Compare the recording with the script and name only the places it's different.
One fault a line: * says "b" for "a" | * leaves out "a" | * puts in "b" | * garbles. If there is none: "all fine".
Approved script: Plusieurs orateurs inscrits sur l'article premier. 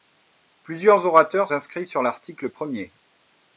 all fine